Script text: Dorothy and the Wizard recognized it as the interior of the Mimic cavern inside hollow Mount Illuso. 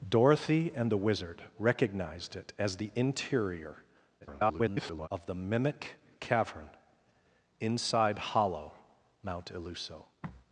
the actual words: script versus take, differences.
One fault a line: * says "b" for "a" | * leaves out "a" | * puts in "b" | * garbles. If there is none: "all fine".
* garbles